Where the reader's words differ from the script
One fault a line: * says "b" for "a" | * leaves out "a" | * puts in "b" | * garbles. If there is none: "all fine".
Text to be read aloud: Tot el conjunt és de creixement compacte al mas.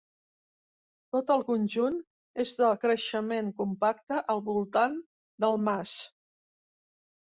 * puts in "voltant del"